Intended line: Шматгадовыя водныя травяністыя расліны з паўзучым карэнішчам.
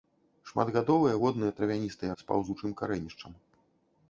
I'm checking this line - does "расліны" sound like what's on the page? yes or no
no